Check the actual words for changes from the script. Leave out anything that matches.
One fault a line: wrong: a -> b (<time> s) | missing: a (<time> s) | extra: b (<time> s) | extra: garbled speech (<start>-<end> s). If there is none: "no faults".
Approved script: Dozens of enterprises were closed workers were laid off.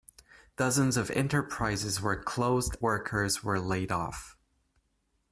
no faults